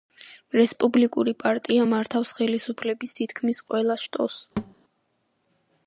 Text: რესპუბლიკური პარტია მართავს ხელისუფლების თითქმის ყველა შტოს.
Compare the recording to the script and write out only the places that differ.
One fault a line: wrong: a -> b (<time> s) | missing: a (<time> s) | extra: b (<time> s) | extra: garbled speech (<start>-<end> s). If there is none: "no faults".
no faults